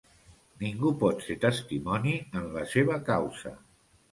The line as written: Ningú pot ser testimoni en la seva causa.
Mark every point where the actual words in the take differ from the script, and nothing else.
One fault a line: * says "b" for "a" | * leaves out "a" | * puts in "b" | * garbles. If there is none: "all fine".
all fine